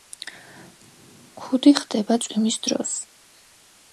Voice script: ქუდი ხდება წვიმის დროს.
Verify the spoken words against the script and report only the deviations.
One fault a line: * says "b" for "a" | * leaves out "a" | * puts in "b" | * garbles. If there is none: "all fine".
all fine